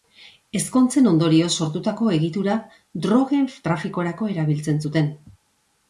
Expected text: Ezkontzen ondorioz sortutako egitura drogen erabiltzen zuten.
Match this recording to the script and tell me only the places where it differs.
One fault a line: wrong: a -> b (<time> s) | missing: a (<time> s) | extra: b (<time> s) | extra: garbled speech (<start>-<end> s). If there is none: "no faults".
extra: trafikorako (3.7 s)